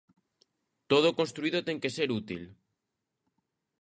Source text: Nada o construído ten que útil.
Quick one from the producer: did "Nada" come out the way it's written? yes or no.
no